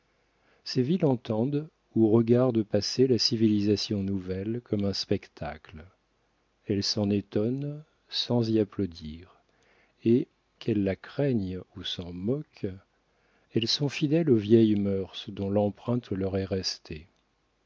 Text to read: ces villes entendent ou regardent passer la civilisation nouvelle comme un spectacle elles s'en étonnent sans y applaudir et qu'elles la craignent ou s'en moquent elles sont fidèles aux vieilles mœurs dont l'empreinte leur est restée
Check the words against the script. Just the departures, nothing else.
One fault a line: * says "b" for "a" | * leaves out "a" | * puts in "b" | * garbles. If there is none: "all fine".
all fine